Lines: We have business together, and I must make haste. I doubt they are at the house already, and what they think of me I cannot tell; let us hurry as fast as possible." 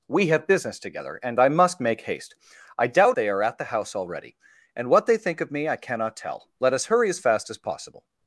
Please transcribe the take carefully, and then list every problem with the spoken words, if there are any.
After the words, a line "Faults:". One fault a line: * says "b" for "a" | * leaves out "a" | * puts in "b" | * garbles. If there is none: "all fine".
We have business together, and I must make haste. I doubt they are at the house already, and what they think of me I cannot tell; let us hurry as fast as possible."
Faults:
all fine